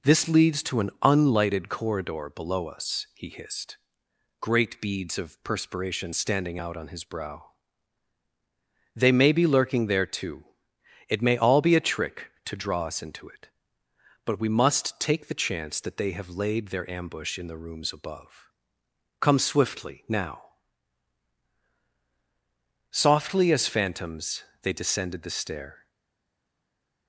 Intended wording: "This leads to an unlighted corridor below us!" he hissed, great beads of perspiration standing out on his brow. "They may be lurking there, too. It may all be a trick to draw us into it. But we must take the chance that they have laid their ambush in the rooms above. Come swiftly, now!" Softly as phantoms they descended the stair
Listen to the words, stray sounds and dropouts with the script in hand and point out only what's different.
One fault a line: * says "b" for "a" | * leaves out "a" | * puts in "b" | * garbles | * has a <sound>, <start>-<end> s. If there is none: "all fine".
all fine